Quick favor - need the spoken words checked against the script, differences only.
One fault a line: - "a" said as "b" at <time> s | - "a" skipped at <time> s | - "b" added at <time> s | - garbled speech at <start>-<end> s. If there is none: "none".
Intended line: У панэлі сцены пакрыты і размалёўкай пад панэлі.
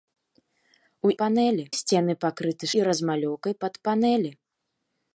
none